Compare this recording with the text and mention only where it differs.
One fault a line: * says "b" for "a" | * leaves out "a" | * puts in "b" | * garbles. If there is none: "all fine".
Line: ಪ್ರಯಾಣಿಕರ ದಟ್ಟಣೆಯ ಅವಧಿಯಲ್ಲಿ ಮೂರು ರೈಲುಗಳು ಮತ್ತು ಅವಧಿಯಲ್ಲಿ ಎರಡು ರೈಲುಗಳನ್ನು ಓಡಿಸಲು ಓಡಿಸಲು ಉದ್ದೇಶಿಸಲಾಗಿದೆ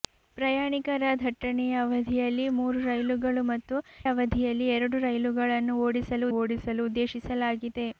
all fine